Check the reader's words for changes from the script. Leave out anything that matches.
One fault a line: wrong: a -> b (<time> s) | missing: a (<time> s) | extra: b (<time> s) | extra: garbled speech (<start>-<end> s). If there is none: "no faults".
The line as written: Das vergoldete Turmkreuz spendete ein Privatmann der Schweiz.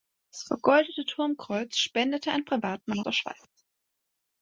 no faults